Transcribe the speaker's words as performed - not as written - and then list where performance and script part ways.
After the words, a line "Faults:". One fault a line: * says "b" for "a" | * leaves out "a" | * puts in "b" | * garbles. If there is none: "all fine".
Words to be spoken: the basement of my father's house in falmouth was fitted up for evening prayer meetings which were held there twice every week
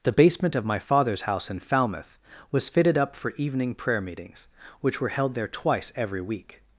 the basement of my father's house in falmouth was fitted up for evening prayer meetings which were held there twice every week
Faults:
all fine